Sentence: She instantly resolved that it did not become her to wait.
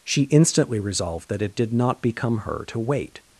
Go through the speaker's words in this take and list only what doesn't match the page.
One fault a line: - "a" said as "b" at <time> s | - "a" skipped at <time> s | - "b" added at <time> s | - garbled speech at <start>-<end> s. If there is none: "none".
none